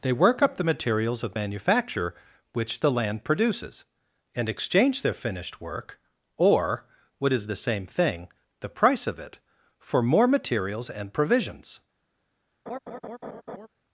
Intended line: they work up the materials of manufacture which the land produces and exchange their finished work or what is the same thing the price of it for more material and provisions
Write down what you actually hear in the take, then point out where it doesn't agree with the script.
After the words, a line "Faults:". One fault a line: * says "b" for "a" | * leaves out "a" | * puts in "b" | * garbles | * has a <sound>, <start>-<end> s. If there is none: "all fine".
they work up the materials of manufacture which the land produces and exchange their finished work or what is the same thing the price of it for more materials and provisions
Faults:
* says "materials" for "material"
* has a laugh, 12.7-13.7 s